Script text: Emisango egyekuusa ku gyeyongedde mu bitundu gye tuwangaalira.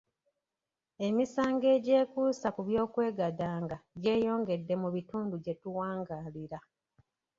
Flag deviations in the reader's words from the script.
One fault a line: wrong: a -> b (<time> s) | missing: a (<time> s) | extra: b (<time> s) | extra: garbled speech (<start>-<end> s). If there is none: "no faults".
extra: by'okwegadanga (2.7 s)